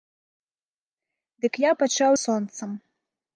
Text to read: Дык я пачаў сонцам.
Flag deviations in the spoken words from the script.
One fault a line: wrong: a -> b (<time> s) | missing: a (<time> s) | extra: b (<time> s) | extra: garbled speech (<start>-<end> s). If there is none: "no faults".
no faults